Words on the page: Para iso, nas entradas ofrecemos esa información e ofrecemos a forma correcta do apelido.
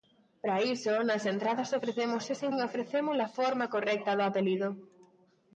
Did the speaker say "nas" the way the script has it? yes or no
yes